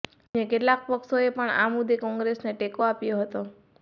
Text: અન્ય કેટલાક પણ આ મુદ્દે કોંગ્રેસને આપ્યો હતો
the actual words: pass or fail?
fail